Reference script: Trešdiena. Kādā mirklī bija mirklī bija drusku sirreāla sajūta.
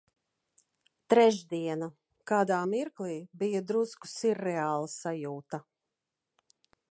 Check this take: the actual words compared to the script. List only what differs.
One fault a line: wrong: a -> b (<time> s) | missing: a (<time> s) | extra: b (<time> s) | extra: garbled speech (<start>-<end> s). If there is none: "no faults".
missing: mirklī bija (3.6 s)